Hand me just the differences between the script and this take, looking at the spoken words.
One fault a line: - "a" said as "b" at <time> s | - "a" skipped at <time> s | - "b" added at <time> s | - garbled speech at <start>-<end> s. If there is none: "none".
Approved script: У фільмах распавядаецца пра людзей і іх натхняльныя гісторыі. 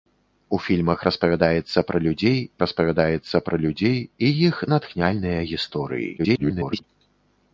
- "распавядаецца пра людзей" added at 2.6 s
- garbled speech at 6.2-6.8 s